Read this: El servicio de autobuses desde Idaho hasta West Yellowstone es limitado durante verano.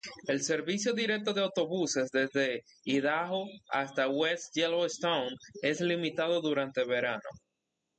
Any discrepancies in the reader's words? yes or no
yes